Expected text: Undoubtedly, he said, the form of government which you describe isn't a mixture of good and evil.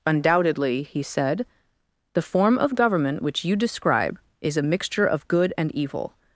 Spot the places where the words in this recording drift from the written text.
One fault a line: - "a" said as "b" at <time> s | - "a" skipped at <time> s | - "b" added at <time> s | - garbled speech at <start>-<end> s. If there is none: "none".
- "isn't" said as "is" at 4.4 s